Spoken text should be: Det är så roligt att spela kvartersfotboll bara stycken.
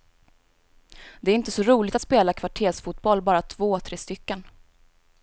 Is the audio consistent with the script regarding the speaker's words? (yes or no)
no